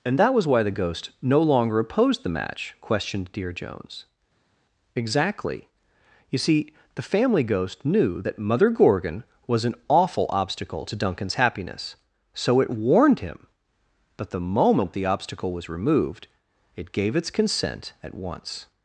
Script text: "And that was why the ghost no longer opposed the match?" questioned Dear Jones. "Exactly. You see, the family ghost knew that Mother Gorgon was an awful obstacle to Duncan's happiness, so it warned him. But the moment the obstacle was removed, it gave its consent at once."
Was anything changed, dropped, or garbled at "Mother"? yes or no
no